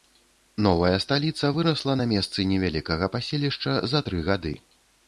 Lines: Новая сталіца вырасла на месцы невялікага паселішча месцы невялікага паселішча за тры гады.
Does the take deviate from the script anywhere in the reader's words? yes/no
yes